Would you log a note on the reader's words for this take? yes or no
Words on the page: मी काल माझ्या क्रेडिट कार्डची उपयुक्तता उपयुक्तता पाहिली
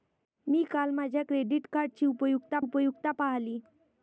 no